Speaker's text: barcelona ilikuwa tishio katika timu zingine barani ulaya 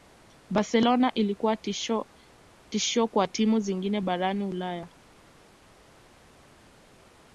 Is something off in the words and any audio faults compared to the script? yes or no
yes